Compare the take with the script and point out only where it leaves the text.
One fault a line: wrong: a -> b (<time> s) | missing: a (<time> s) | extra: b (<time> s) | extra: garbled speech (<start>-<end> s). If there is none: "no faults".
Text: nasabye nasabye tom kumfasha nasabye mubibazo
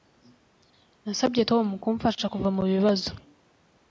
missing: nasabye (1.4 s)
wrong: nasabye -> kuva (2.3 s)